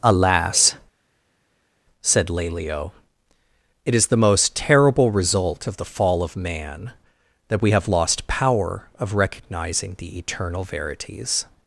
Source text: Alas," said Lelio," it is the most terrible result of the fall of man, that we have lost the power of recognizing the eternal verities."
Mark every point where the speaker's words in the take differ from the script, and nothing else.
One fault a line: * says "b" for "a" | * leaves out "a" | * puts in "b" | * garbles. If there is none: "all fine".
* leaves out "the"